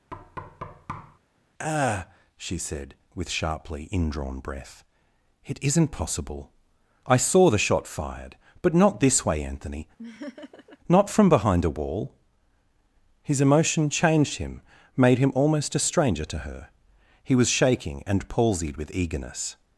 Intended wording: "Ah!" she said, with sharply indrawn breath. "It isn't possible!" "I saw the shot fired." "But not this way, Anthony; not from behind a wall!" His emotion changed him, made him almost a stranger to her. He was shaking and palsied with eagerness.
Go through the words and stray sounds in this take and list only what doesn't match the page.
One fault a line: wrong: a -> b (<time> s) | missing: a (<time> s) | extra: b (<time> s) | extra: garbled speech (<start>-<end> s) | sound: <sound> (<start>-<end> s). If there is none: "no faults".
sound: thud (0.1-1.2 s)
sound: laugh (10.0-10.8 s)